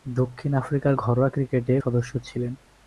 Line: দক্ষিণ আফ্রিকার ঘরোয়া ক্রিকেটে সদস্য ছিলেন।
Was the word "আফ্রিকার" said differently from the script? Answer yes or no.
no